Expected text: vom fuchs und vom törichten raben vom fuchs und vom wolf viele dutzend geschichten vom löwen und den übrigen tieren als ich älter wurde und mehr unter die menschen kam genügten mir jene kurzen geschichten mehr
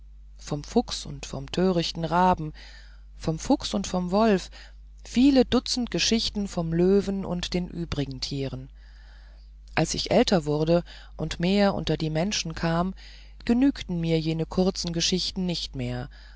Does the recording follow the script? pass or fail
fail